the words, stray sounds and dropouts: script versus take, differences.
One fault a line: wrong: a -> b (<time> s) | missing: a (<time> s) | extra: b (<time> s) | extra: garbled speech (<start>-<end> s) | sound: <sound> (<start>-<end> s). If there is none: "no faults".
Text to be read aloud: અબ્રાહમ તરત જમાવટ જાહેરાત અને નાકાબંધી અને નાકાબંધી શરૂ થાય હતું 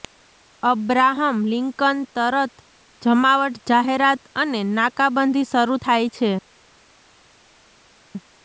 extra: લિંકન (1.5 s)
missing: અને નાકાબંધી (5.5 s)
wrong: હતું -> છે (6.1 s)